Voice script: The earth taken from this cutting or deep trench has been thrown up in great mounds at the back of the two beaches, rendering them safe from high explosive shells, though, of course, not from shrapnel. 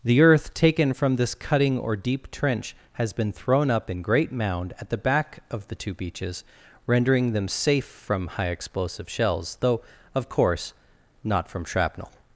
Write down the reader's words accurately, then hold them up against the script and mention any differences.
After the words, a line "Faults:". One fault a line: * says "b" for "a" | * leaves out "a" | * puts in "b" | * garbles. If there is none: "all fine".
The earth taken from this cutting or deep trench has been thrown up in great mound at the back of the two beaches, rendering them safe from high explosive shells, though, of course, not from shrapnel.
Faults:
* says "mound" for "mounds"